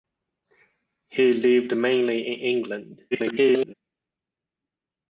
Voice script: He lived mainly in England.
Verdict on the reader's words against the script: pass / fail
fail